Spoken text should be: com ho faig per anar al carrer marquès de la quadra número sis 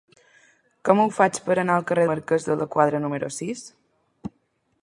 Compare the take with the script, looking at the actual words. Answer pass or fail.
pass